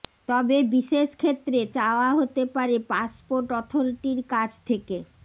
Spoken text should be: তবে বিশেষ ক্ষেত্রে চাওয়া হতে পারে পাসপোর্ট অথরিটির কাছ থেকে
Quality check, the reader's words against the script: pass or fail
pass